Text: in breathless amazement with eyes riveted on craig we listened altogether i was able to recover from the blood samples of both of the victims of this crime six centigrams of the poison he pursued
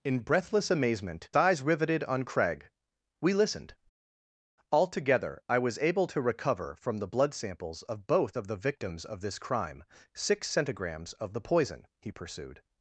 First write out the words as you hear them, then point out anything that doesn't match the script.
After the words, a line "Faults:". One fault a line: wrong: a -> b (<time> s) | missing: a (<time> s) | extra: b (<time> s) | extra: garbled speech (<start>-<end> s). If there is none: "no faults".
in breathless amazement eyes riveted on craig we listened altogether i was able to recover from the blood samples of both of the victims of this crime six centigrams of the poison he pursued
Faults:
missing: with (1.3 s)